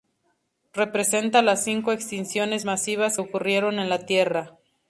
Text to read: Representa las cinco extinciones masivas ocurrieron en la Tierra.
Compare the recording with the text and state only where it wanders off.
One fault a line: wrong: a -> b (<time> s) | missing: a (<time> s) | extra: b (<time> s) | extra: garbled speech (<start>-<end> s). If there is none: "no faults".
no faults